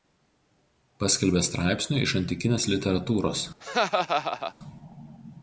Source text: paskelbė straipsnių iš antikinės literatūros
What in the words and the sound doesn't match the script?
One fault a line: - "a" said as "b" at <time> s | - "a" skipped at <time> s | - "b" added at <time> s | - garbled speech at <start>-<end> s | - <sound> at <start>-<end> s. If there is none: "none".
- laugh at 3.6-4.5 s